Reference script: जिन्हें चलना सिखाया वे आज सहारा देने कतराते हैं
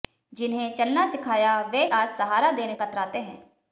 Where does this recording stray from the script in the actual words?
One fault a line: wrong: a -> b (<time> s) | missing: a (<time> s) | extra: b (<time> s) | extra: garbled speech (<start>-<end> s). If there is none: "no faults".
no faults